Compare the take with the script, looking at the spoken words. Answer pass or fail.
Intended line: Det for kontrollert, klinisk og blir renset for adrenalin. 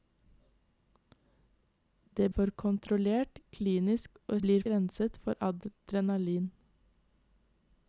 pass